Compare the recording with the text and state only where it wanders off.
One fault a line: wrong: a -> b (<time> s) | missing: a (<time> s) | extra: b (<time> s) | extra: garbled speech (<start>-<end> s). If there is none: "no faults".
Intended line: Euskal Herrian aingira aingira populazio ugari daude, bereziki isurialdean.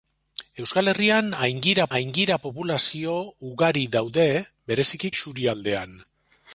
no faults